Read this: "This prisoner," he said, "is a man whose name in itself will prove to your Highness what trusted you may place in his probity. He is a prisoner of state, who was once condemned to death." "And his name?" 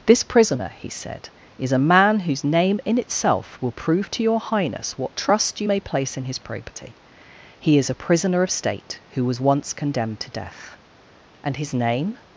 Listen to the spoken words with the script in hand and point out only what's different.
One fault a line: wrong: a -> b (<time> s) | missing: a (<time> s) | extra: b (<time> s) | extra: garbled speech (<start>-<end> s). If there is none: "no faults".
wrong: trusted -> trust (5.2 s)